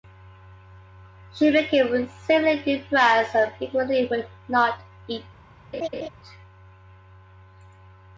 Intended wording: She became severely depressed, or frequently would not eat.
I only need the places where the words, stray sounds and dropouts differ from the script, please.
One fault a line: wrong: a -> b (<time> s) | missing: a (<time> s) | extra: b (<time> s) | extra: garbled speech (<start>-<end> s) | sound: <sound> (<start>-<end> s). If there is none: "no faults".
wrong: or -> and (3.4 s)
sound: laugh (5.7-6.1 s)